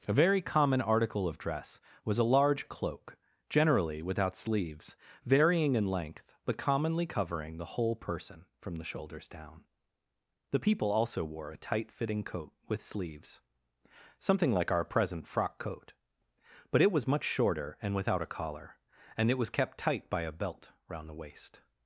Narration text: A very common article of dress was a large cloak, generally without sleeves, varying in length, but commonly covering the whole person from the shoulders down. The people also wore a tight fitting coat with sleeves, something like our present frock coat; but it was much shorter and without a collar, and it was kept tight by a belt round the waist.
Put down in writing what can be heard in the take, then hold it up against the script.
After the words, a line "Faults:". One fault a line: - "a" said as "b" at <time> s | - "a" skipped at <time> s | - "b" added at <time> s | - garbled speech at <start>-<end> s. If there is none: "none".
A very common article of dress was a large cloak, generally without sleeves, varying in length, but commonly covering the whole person from the shoulders down. The people also wore a tight fitting coat with sleeves, something like our present frock coat; but it was much shorter and without a collar, and it was kept tight by a belt round the waist.
Faults:
none